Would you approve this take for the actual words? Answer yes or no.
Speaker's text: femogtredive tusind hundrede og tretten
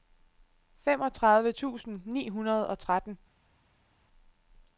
no